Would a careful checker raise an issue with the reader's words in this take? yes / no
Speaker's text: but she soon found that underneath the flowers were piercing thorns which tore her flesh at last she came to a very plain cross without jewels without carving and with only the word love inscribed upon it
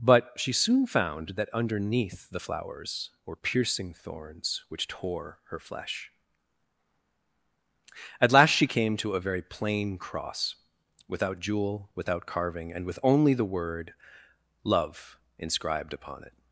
yes